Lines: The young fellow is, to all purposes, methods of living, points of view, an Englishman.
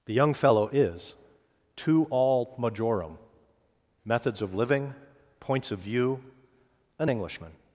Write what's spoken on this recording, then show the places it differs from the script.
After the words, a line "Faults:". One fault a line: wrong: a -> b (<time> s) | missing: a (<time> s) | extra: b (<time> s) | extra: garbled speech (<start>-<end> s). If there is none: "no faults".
The young fellow is, to all majorum, methods of living, points of view, an Englishman.
Faults:
wrong: purposes -> majorum (2.6 s)